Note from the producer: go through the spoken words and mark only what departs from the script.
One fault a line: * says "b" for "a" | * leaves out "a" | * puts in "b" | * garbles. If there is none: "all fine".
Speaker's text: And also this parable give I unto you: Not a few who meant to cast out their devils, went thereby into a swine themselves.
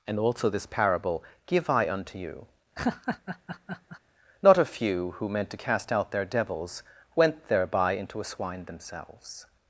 all fine